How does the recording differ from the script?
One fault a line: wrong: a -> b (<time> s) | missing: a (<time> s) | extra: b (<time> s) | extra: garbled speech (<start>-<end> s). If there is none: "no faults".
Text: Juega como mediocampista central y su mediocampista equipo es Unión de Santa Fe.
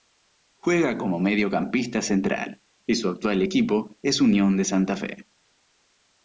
wrong: mediocampista -> actual (3.1 s)